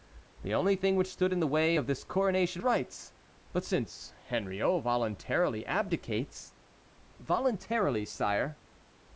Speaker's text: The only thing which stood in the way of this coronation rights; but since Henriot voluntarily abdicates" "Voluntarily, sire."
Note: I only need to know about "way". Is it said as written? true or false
true